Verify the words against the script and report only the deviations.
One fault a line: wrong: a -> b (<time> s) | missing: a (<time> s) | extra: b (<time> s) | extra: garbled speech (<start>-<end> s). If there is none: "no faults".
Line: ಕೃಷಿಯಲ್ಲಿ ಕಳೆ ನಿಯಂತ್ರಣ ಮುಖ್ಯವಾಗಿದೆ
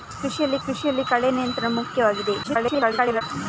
extra: ಕೃಷಿಯಲ್ಲಿ (0.7 s)
extra: garbled speech (2.4-3.2 s)